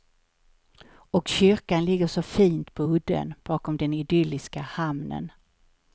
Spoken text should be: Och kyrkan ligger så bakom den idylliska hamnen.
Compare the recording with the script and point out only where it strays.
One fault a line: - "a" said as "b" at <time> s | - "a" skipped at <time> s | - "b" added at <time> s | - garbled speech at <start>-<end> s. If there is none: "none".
- "fint på udden" added at 2.2 s